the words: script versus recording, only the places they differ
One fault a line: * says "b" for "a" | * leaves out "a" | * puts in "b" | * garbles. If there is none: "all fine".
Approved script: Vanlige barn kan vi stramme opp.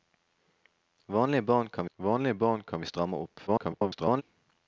* puts in "vanlige barn kan"
* garbles